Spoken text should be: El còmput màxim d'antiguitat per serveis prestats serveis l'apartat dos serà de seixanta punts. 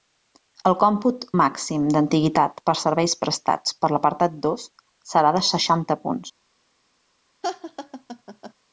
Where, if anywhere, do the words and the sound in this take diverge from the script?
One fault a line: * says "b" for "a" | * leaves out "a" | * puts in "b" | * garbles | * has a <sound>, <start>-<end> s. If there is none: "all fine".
* says "per" for "serveis"
* has a laugh, 7.4-8.5 s